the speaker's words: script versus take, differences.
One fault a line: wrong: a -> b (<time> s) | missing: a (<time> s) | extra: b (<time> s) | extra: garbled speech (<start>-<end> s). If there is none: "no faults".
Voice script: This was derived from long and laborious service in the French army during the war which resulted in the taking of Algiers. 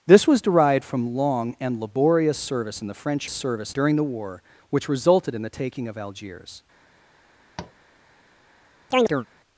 wrong: army -> service (3.3 s)